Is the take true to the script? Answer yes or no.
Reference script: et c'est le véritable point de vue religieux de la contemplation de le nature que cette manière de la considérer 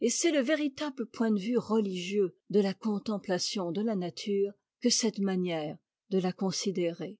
no